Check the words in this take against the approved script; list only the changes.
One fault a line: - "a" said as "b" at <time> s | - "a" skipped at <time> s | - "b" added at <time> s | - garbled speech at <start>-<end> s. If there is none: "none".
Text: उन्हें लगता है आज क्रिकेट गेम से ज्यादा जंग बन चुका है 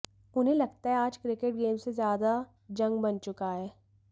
none